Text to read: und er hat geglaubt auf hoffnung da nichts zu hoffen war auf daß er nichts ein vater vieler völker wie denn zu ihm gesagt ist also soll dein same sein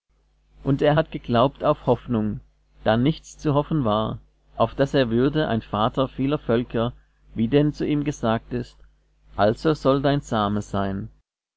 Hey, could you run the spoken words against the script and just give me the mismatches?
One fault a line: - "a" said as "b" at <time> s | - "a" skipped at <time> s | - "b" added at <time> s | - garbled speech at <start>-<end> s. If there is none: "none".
- "nichts" said as "würde" at 5.1 s